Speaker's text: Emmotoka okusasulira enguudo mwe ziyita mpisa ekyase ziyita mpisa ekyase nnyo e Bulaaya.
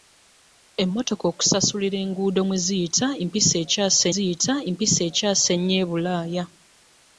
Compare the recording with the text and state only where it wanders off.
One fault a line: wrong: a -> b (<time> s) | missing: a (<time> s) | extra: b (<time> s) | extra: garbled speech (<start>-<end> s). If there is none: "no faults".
no faults